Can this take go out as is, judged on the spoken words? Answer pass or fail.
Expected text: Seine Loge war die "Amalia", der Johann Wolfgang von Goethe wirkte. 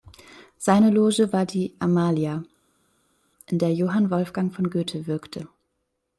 fail